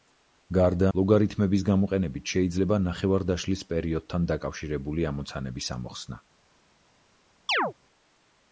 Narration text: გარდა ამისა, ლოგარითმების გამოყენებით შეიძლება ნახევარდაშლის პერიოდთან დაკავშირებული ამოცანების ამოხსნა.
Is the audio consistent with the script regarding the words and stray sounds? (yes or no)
no